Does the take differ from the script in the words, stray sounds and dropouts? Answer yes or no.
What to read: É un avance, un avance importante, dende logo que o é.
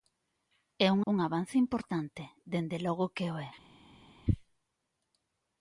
yes